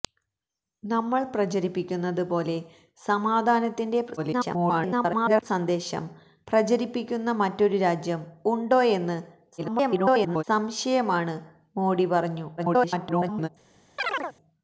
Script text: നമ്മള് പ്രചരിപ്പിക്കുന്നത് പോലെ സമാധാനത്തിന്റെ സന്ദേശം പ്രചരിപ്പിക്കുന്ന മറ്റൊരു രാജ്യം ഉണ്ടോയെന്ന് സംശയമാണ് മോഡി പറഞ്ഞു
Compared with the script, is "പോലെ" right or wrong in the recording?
right